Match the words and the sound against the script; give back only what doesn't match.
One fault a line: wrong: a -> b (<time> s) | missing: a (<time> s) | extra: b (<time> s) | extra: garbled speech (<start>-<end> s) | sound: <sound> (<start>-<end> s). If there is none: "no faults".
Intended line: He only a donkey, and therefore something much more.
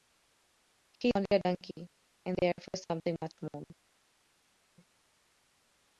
no faults